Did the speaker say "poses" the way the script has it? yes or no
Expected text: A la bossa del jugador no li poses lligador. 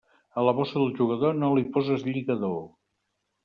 yes